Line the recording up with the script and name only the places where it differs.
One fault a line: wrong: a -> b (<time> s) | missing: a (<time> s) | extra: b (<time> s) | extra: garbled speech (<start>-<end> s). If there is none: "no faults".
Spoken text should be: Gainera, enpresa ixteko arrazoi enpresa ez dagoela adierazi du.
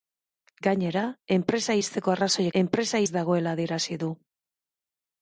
no faults